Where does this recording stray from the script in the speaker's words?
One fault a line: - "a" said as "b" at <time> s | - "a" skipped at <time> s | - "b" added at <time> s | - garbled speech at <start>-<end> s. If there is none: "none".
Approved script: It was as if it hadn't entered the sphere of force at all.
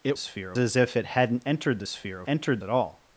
- "was" said as "sphere" at 0.2 s
- "force" said as "entered" at 2.3 s